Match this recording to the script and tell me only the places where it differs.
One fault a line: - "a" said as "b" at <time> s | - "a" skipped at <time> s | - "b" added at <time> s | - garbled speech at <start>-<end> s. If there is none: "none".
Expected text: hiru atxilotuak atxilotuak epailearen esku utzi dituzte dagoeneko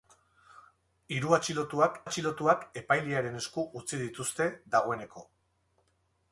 none